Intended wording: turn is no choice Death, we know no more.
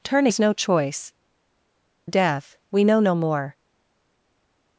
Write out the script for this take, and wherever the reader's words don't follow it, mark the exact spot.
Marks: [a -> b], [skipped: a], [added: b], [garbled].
turn is no choice Death, we know no more.